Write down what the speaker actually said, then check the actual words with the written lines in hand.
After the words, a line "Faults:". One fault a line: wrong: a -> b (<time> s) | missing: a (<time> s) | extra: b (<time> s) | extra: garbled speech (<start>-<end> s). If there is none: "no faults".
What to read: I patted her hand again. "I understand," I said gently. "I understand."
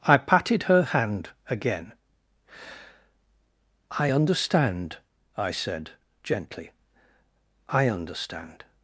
I patted her hand again. "I understand," I said gently. "I understand."
Faults:
no faults